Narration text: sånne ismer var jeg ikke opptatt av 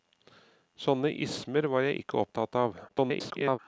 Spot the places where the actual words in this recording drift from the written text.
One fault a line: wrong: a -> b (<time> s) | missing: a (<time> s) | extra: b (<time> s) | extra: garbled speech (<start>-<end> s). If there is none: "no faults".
extra: garbled speech (2.9-3.6 s)